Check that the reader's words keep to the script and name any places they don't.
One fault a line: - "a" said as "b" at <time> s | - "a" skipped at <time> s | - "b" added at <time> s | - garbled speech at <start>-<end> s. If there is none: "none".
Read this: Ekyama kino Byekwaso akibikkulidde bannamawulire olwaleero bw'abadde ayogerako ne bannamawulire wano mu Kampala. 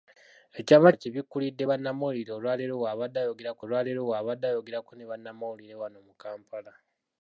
- "kino Byekwaso akibikkulidde bannamawulire" said as "akibikkulidde bannamawulire olwaleero bw'abadde ayogerako" at 0.9 s